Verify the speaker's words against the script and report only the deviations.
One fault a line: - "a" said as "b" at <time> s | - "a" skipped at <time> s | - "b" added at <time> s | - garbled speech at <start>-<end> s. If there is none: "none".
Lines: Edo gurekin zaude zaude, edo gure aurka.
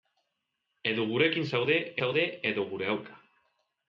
none